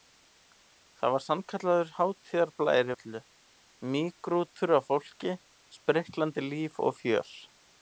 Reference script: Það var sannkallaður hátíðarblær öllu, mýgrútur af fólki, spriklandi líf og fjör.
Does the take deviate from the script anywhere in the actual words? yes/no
no